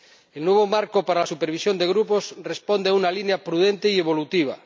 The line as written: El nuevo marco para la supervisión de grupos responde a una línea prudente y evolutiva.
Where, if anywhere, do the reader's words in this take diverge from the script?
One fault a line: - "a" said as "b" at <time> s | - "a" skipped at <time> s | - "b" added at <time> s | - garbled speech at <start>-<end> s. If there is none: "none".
none